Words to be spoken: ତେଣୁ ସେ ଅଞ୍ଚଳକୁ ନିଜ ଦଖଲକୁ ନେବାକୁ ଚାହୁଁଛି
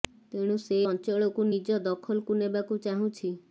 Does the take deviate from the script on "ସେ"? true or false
false